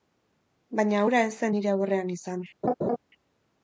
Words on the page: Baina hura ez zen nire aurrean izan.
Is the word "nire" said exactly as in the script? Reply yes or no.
yes